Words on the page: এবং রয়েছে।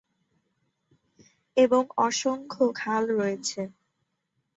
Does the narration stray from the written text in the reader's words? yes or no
yes